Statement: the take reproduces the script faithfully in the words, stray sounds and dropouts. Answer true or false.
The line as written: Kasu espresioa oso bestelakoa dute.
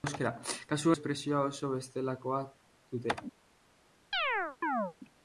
false